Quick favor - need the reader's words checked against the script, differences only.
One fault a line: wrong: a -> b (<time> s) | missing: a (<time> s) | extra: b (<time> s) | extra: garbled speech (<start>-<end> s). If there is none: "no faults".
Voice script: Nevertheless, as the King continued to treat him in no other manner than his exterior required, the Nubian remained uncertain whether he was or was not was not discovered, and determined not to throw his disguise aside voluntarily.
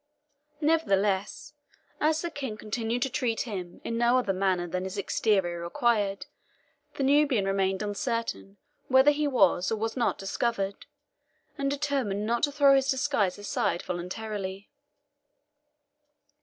missing: was not (10.2 s)